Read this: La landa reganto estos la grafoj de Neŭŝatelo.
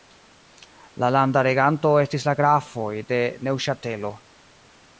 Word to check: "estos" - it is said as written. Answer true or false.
false